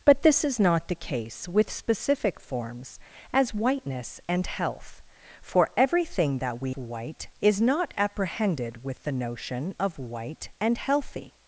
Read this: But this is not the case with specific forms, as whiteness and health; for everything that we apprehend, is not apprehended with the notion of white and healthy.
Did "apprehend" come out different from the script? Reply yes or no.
yes